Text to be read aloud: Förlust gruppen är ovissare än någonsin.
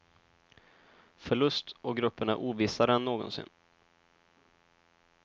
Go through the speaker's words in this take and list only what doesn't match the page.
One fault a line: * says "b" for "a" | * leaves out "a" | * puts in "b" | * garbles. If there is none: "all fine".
* puts in "och"